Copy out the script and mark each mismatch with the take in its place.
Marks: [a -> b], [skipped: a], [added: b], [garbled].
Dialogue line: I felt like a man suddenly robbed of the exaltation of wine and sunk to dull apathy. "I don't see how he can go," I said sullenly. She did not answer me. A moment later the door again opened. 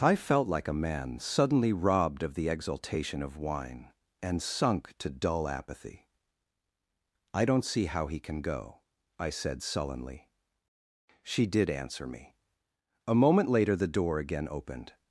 I felt like a man suddenly robbed of the exaltation of wine and sunk to dull apathy. "I don't see how he can go," I said sullenly. She did [skipped: not] answer me. A moment later the door again opened.